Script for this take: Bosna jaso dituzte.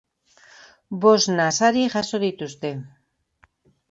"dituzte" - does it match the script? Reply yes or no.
yes